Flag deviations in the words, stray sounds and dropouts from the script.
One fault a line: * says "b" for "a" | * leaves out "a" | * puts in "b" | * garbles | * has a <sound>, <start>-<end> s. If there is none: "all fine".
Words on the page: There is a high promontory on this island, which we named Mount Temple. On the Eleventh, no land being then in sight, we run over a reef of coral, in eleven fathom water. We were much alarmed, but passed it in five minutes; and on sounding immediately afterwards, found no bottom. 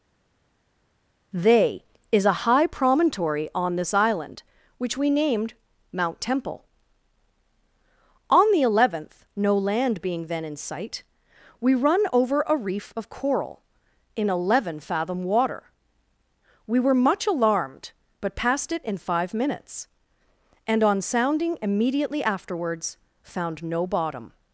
* says "They" for "There"